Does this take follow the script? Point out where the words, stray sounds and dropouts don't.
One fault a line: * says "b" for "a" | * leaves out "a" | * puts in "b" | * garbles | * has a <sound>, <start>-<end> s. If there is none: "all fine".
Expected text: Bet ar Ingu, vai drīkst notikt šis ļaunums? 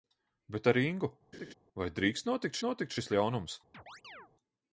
* has a laugh, 1.3-1.5 s
* puts in "notikt"
* has a chirp, 3.7-4.3 s